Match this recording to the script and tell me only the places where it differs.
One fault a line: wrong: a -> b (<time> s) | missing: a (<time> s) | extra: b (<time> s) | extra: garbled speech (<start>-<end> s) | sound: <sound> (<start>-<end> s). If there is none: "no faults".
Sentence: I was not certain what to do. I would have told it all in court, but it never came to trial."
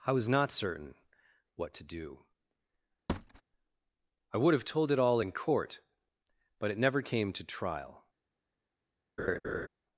sound: thud (3.1-3.4 s)
sound: laugh (9.2-9.7 s)